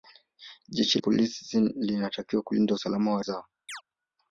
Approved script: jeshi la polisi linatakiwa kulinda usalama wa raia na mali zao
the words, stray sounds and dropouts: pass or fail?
fail